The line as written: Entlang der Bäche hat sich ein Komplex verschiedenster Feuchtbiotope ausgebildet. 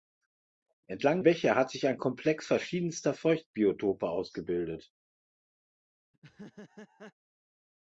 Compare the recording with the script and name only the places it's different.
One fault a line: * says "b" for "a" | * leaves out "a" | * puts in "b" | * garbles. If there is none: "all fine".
* leaves out "der"